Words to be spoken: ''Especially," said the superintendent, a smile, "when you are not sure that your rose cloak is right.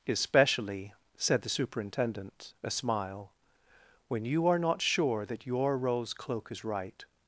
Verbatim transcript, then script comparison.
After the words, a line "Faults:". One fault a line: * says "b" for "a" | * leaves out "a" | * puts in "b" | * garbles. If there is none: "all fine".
''Especially," said the superintendent, a smile, "when you are not sure that your rose cloak is right.
Faults:
all fine